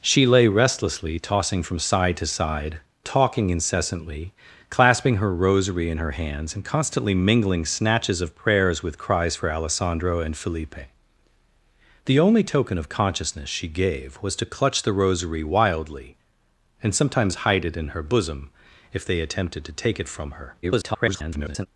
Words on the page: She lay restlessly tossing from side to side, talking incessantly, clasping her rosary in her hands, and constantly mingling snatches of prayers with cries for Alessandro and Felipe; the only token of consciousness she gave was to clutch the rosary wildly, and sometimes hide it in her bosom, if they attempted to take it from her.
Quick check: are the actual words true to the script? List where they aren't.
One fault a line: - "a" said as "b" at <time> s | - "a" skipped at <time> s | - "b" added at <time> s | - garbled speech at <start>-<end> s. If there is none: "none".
- garbled speech at 20.6-21.7 s